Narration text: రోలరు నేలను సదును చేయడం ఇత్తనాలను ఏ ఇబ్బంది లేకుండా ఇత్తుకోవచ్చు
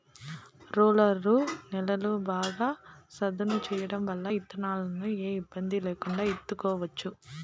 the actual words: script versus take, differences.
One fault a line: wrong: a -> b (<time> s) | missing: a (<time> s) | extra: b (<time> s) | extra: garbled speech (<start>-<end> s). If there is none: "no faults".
extra: బాగా (2.3 s)
extra: వల్ల (4.0 s)